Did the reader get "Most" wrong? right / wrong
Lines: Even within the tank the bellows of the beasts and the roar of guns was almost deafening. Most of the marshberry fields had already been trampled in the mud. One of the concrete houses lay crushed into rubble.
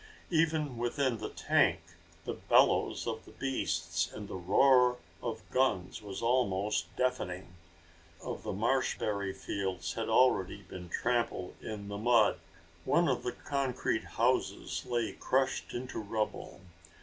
wrong